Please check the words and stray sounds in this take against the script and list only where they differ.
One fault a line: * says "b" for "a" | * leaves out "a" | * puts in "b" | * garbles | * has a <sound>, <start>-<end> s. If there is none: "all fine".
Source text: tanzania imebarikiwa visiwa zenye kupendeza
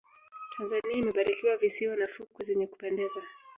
* puts in "na fukwe"